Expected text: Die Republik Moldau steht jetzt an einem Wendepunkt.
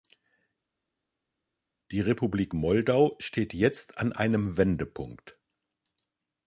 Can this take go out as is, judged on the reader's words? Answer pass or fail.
pass